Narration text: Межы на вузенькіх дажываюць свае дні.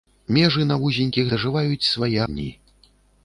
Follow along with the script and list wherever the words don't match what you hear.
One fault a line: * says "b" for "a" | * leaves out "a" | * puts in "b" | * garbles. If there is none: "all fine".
all fine